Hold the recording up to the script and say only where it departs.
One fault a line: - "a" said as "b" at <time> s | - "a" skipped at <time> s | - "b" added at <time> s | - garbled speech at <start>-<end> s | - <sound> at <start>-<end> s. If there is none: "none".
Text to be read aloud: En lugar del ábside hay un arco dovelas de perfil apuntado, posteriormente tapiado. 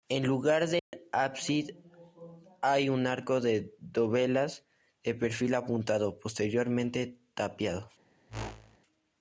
- dropout at 0.8-0.9 s
- "de" added at 3.4 s
- whoosh at 8.3-8.8 s